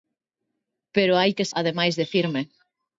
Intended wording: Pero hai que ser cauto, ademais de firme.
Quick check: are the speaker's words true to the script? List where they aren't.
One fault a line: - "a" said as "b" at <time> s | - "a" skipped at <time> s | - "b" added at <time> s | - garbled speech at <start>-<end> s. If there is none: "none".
- "ser cauto" skipped at 1.5 s